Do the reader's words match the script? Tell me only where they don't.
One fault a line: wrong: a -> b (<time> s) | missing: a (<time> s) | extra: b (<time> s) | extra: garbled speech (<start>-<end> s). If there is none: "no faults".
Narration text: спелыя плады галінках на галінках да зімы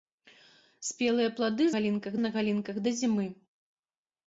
no faults